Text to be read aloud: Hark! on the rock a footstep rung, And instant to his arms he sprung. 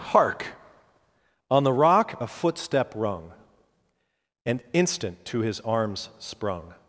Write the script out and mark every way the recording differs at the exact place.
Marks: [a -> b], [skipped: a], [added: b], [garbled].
Hark! on the rock a footstep rung, And instant to his arms [skipped: he] sprung.